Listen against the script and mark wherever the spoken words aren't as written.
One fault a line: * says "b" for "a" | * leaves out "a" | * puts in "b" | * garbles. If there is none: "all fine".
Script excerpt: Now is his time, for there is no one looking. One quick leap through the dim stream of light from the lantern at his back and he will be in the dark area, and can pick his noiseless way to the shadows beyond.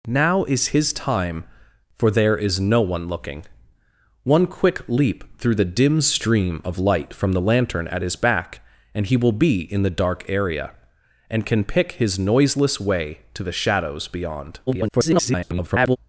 * garbles